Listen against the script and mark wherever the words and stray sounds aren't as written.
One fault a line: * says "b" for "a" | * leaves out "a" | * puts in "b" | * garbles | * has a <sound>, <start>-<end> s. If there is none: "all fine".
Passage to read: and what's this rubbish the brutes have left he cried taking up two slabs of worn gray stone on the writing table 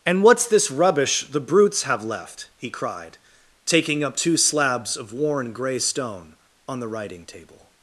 all fine